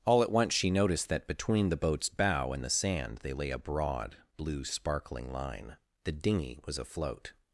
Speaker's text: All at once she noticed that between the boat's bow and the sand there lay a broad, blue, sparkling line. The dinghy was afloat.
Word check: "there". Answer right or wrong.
wrong